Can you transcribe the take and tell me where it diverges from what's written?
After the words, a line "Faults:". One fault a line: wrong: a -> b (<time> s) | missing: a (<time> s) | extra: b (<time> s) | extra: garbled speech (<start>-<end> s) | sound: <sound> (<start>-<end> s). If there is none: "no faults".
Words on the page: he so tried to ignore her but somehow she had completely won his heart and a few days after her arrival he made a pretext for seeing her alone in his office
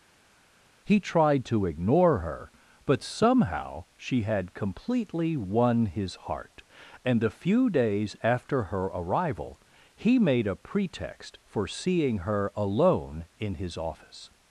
he tried to ignore her but somehow she had completely won his heart and a few days after her arrival he made a pretext for seeing her alone in his office
Faults:
missing: so (1.0 s)